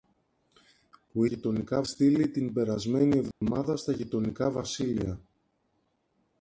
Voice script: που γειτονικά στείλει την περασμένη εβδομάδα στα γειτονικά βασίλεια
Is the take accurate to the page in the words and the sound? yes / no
no